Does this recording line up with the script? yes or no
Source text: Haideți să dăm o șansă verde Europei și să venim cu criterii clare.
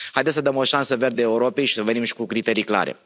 no